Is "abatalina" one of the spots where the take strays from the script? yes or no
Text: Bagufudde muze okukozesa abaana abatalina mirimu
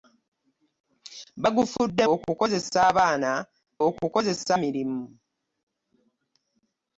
yes